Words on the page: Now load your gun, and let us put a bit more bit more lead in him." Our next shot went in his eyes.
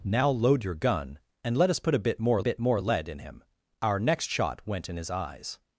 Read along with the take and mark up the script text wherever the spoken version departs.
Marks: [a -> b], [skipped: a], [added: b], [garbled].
Now load your gun, and let us put a bit more bit more lead in him." Our next shot went in his eyes.